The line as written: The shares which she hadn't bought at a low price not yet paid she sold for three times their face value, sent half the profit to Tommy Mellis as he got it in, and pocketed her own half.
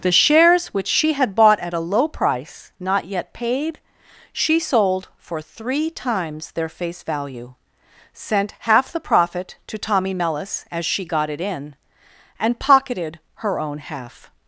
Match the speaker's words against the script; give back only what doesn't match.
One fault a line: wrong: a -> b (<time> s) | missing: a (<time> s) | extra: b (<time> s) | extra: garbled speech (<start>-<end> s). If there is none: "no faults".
wrong: hadn't -> had (1.1 s)
wrong: he -> she (10.8 s)